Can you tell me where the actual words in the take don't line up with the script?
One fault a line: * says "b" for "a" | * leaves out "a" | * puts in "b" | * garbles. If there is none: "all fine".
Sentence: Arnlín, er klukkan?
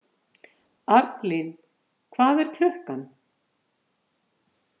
* puts in "hvað"